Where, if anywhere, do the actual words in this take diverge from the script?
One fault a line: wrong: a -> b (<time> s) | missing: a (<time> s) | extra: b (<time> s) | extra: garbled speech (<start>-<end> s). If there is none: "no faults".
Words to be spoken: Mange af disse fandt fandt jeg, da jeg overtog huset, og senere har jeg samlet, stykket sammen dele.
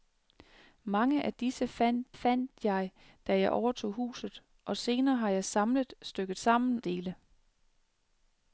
no faults